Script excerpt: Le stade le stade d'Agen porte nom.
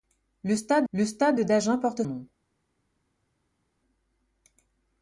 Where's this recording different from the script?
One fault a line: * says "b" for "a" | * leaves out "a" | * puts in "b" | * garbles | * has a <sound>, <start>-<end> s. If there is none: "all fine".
all fine